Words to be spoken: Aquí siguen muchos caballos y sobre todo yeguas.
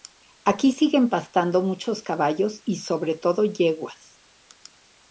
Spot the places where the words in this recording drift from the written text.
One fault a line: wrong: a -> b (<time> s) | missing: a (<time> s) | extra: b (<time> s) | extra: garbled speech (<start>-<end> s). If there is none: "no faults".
extra: pastando (1.1 s)